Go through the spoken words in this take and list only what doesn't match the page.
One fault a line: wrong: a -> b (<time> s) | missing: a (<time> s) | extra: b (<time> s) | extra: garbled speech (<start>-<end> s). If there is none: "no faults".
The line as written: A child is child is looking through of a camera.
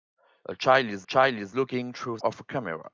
no faults